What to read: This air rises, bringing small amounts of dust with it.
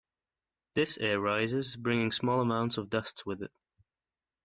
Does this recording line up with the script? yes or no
yes